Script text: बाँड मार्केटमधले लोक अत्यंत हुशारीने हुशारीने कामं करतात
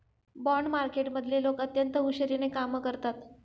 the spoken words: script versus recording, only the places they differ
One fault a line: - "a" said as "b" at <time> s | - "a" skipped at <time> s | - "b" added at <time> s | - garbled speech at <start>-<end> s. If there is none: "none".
- "हुशारीने" skipped at 2.5 s